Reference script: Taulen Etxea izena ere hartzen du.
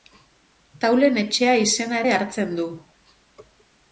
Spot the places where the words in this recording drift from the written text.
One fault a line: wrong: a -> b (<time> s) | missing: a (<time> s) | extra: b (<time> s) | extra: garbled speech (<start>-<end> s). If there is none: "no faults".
no faults